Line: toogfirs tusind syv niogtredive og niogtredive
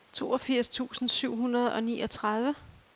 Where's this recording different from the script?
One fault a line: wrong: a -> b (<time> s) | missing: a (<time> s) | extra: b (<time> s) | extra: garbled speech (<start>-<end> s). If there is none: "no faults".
wrong: niogtredive -> hundrede (1.4 s)